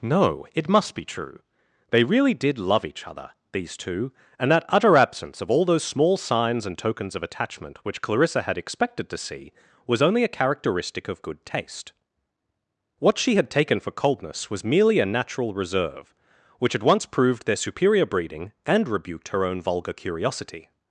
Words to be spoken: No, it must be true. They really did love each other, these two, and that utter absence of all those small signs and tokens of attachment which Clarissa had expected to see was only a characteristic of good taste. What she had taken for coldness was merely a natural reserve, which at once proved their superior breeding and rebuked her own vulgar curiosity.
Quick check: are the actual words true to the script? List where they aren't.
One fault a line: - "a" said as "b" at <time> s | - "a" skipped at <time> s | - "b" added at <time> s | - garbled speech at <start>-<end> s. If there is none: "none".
none